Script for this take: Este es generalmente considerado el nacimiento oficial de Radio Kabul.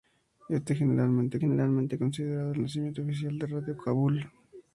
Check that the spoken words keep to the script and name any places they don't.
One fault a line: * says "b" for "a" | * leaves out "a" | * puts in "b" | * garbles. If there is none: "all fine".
* puts in "generalmente"